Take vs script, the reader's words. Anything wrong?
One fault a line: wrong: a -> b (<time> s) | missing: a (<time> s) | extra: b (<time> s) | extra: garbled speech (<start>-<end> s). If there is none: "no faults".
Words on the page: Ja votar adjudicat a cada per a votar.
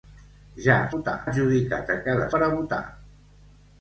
no faults